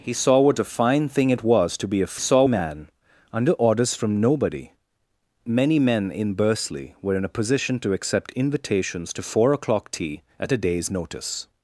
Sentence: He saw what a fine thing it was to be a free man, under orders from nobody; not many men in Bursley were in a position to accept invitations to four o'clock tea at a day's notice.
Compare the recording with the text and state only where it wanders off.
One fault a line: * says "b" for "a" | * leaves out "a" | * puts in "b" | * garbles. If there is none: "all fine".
* says "saw" for "free"
* leaves out "not"